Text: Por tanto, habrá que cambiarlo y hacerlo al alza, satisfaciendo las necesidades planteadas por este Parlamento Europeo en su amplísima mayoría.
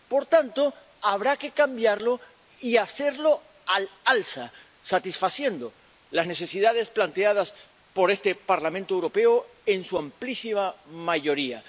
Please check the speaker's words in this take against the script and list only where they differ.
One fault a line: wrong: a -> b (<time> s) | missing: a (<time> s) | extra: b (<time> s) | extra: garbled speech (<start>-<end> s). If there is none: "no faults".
no faults